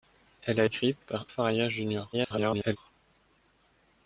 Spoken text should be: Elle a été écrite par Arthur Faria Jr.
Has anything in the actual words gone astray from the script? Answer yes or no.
yes